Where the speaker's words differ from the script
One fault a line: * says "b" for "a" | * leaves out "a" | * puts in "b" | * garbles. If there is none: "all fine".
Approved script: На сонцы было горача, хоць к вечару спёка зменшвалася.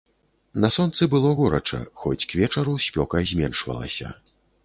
all fine